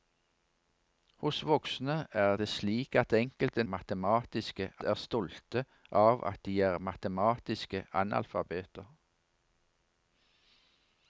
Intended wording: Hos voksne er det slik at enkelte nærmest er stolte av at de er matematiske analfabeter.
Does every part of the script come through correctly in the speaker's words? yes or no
no